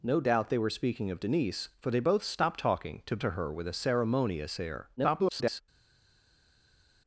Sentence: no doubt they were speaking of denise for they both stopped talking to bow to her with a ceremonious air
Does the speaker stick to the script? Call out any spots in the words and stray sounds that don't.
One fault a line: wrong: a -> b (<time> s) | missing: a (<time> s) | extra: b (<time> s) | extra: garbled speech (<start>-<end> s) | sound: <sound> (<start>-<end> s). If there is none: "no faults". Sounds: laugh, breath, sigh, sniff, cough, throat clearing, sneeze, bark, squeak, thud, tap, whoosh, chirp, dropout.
missing: bow (3.2 s)
extra: garbled speech (5.0-5.6 s)